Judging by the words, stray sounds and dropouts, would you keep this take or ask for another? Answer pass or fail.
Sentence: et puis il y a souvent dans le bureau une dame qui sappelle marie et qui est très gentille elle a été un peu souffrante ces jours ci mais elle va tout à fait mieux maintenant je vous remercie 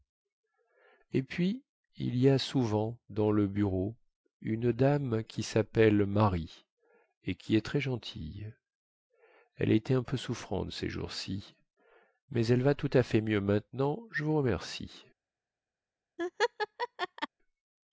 fail